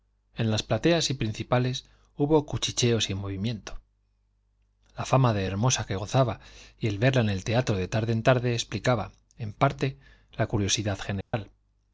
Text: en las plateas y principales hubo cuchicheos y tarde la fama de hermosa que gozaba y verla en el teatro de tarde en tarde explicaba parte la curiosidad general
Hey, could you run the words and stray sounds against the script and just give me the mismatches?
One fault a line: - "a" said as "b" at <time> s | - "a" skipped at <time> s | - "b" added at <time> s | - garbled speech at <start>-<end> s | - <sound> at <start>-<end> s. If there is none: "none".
- "tarde" said as "movimiento" at 3.1 s
- "el" added at 6.9 s
- "en" added at 9.4 s
- dropout at 11.2-11.3 s